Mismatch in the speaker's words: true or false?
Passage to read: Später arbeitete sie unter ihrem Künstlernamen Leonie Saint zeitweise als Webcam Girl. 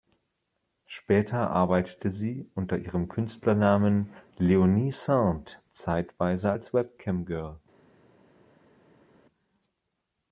false